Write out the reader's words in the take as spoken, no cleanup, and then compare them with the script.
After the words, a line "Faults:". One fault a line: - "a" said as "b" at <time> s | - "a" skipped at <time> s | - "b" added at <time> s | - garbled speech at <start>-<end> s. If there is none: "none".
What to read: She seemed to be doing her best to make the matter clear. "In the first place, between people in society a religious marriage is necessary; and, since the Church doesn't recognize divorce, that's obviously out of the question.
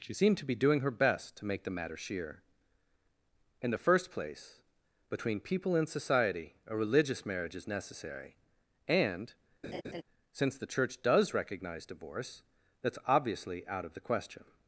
She seemed to be doing her best to make the matter sheer. "In the first place, between people in society a religious marriage is necessary; and, since the Church does recognize divorce, that's obviously out of the question.
Faults:
- "clear" said as "sheer" at 2.0 s
- "doesn't" said as "does" at 11.0 s